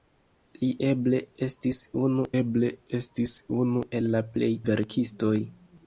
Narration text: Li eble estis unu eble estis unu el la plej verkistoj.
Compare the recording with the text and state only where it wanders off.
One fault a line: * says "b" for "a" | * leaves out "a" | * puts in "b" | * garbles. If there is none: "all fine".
all fine